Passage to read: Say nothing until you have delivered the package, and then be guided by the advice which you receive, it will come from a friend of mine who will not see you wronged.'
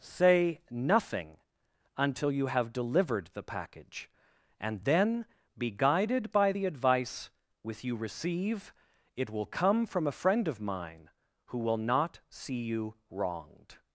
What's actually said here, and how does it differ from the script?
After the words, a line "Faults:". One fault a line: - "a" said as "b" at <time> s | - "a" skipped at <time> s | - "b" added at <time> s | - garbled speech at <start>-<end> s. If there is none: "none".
Say nothing until you have delivered the package, and then be guided by the advice with you receive, it will come from a friend of mine who will not see you wronged.'
Faults:
- "which" said as "with" at 7.6 s